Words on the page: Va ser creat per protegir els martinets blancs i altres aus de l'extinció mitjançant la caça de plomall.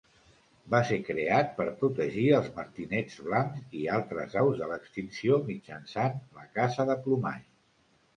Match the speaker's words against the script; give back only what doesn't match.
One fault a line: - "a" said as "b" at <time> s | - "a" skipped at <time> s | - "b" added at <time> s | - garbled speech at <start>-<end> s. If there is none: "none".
none